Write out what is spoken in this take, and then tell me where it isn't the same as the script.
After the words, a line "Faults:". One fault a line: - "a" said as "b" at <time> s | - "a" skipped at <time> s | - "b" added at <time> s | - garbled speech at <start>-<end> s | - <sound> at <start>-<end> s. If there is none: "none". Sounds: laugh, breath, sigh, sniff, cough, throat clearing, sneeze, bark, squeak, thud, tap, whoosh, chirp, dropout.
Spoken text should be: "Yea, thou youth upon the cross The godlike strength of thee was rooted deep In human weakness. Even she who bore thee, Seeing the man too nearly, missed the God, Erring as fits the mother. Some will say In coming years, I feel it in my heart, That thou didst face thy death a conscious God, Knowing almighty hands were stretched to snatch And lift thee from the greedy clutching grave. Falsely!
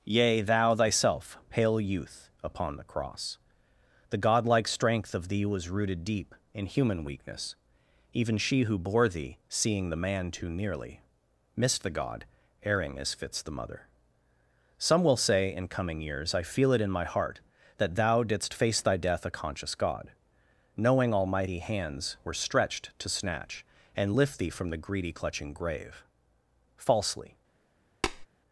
"Yea, thou thyself, pale youth upon the cross The godlike strength of thee was rooted deep In human weakness. Even she who bore thee, Seeing the man too nearly, missed the God, Erring as fits the mother. Some will say In coming years, I feel it in my heart, That thou didst face thy death a conscious God, Knowing almighty hands were stretched to snatch And lift thee from the greedy clutching grave. Falsely!
Faults:
- "thyself pale" added at 0.8 s
- tap at 28.0-28.3 s